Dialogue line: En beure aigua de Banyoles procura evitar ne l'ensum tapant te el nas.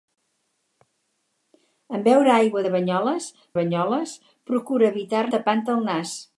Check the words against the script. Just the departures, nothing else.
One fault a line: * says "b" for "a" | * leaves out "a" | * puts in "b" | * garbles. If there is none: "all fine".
* puts in "Banyoles"
* leaves out "ne l'ensum"